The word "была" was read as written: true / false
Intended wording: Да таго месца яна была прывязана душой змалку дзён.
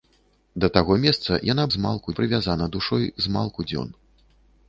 false